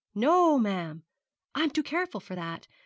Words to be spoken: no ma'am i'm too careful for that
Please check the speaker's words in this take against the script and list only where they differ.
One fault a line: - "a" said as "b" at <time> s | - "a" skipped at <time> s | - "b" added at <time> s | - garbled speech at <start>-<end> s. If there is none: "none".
none